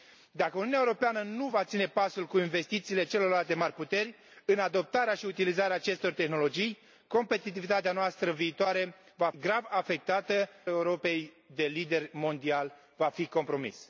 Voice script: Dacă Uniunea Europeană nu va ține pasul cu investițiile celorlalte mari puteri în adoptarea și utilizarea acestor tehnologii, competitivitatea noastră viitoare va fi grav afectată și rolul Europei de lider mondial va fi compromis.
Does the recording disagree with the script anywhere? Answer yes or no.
yes